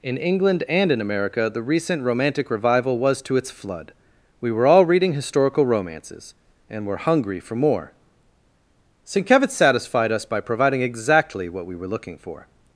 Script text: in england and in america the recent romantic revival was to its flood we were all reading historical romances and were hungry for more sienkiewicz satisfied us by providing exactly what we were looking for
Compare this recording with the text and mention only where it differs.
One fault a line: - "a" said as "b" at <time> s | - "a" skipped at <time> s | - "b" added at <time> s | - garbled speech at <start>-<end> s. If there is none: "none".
none